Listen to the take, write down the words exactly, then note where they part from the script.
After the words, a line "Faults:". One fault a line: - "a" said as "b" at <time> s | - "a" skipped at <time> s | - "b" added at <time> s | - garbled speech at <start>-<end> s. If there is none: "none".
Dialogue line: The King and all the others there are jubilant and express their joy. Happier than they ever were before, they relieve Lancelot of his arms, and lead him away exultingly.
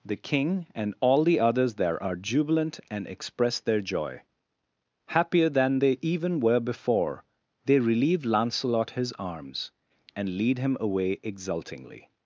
The King and all the others there are jubilant and express their joy. Happier than they even were before, they relieve Lancelot his arms, and lead him away exultingly.
Faults:
- "ever" said as "even" at 6.0 s
- "of" skipped at 8.9 s